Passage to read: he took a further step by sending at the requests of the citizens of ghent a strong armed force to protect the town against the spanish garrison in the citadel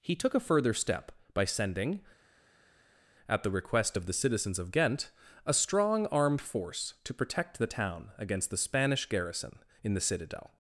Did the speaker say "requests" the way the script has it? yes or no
no